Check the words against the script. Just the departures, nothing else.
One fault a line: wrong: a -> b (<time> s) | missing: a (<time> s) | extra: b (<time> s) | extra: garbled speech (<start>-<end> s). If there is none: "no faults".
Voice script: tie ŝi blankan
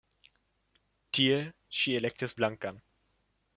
extra: elektis (2.0 s)